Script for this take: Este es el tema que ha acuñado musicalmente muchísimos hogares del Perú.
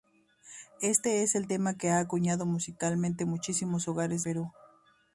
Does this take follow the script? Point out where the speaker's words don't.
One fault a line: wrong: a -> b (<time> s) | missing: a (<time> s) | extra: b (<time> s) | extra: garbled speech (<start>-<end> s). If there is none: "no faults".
missing: del (4.2 s)